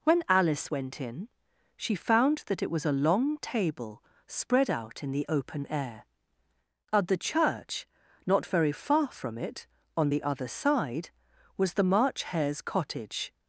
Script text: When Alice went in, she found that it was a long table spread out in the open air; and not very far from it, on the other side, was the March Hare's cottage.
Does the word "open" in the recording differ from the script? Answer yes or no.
no